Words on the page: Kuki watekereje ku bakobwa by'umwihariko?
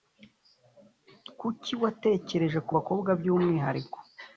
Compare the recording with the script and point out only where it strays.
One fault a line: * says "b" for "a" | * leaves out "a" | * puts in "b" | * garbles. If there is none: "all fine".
all fine